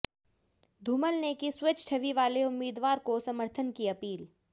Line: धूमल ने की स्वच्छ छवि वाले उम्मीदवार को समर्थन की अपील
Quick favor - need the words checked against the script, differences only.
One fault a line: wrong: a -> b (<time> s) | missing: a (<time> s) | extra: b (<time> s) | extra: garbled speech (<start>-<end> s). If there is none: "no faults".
no faults